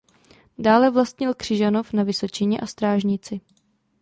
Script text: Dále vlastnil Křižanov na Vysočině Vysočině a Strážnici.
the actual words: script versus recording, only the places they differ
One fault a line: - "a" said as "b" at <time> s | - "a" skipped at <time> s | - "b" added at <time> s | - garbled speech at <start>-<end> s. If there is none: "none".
- "Vysočině" skipped at 2.6 s